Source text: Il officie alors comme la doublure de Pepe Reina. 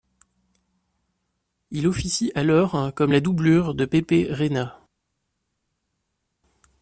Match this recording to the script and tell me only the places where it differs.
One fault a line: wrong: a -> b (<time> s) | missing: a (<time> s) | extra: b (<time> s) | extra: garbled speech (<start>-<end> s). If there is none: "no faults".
no faults